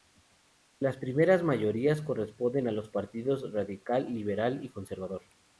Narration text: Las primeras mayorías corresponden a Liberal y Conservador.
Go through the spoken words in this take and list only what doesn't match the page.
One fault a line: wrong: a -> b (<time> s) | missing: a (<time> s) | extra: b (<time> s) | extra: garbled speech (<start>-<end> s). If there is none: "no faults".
extra: los partidos Radical (2.7 s)